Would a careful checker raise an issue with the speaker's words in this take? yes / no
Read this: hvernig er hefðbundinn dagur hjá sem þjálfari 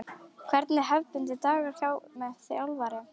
no